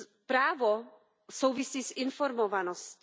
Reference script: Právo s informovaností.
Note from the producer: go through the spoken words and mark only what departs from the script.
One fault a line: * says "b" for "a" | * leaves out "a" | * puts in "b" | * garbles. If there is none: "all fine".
* puts in "souvisí"